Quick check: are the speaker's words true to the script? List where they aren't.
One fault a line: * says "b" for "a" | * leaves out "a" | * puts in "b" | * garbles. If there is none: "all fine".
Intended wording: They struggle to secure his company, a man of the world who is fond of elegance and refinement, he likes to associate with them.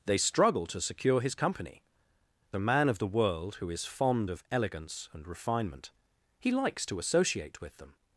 all fine